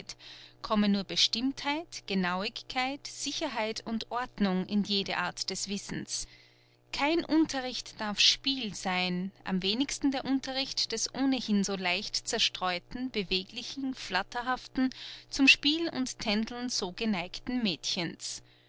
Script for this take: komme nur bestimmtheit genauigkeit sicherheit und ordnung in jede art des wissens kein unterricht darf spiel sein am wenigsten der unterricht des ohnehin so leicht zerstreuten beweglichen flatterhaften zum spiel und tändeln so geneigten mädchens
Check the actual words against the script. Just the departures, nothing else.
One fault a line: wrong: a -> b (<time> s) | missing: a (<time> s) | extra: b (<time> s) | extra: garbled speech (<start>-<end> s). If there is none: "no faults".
no faults